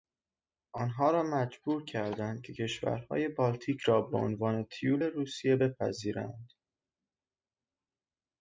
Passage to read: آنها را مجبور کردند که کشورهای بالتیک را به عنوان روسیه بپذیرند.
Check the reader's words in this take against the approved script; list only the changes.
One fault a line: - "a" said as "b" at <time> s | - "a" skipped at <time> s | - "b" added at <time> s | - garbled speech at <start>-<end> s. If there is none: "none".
- "تیول" added at 4.6 s